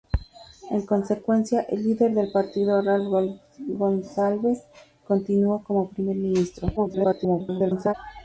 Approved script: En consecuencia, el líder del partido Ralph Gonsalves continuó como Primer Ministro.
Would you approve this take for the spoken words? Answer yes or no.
no